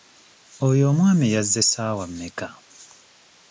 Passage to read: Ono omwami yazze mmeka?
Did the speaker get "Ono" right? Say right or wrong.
wrong